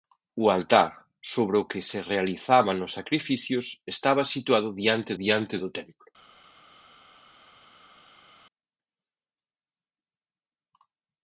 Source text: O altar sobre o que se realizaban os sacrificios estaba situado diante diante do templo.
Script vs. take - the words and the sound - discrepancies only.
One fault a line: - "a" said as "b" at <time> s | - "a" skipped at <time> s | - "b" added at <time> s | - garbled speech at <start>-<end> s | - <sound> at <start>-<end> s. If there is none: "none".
none